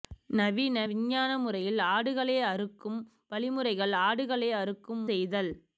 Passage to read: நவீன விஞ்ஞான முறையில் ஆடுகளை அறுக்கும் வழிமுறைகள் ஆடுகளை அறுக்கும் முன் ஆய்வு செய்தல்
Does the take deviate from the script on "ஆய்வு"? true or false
true